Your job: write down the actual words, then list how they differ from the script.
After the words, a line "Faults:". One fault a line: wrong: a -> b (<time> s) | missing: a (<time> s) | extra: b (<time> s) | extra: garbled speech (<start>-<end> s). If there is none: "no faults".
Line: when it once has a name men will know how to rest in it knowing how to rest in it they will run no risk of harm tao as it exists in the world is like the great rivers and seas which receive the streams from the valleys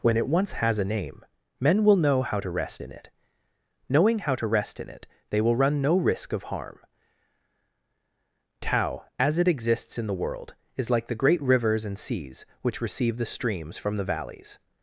when it once has a name men will know how to rest in it knowing how to rest in it they will run no risk of harm tao as it exists in the world is like the great rivers and seas which receive the streams from the valleys
Faults:
no faults